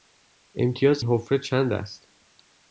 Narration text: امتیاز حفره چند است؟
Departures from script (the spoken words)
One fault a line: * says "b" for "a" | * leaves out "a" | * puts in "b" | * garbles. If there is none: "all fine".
all fine